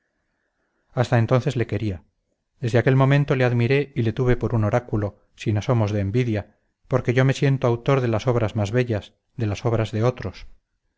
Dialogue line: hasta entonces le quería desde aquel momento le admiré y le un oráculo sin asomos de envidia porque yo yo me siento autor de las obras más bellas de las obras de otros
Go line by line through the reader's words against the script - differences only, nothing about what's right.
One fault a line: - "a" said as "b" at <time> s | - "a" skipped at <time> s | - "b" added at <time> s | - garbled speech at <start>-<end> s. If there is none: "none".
- "tuve por" added at 4.1 s
- "yo" skipped at 7.2 s